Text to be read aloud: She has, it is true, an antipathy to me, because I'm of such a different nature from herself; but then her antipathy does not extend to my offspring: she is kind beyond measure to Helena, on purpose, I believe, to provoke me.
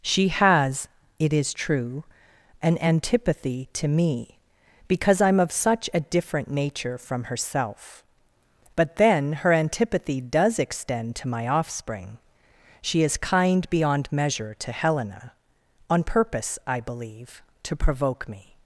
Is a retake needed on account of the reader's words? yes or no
yes